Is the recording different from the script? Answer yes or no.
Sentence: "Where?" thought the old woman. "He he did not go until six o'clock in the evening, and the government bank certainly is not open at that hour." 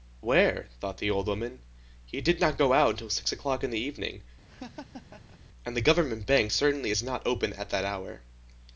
yes